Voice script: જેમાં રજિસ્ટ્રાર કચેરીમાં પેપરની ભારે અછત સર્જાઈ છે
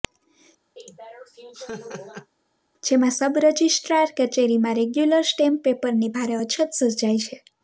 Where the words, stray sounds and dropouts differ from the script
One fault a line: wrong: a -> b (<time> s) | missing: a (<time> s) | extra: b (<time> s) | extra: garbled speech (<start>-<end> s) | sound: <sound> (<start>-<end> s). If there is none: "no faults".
sound: laugh (0.8-2.3 s)
extra: સબ (3.1 s)
extra: રેગ્યુલર સ્ટેમ્પ (4.8 s)